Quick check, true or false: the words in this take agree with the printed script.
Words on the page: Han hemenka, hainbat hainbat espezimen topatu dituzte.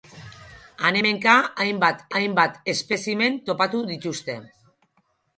true